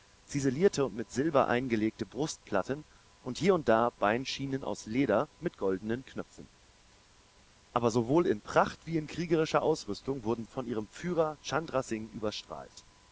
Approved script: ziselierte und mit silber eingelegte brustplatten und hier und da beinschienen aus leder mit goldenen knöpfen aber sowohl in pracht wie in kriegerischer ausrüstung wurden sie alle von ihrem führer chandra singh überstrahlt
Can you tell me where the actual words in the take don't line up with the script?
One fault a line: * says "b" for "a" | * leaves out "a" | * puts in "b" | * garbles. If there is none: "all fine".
* leaves out "sie alle"